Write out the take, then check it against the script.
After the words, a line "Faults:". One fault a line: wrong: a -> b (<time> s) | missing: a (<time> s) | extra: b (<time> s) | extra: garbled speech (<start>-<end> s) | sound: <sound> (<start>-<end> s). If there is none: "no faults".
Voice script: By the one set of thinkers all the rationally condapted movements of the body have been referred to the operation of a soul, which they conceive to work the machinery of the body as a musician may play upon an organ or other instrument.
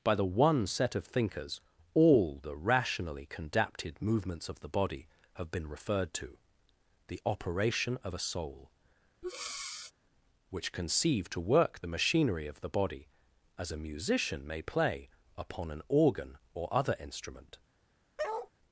By the one set of thinkers all the rationally condapted movements of the body have been referred to the operation of a soul, which conceive to work the machinery of the body as a musician may play upon an organ or other instrument.
Faults:
sound: breath (9.2-9.9 s)
missing: they (10.7 s)
sound: bark (18.2-18.5 s)